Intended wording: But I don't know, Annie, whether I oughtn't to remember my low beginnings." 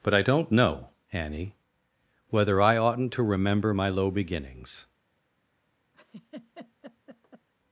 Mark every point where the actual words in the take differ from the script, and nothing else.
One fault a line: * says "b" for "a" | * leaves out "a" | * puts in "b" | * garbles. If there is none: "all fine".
all fine